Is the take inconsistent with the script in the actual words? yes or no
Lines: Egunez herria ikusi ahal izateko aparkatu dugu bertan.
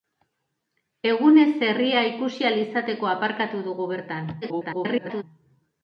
yes